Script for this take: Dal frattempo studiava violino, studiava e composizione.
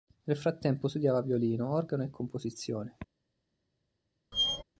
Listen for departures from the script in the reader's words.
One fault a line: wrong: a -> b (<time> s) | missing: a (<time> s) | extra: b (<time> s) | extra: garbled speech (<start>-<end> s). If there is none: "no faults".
wrong: Dal -> Nel (0.2 s)
wrong: studiava -> organo (1.7 s)